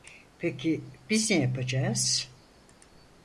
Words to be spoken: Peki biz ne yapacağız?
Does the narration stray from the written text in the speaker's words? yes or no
no